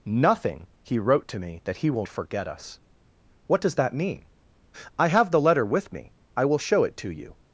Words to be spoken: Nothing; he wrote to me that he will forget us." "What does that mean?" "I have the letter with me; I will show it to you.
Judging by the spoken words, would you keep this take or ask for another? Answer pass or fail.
pass